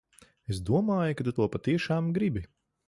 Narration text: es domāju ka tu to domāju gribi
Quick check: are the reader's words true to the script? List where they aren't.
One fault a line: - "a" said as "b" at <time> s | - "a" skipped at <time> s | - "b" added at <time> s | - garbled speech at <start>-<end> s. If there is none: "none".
- "domāju" said as "patiešām" at 1.6 s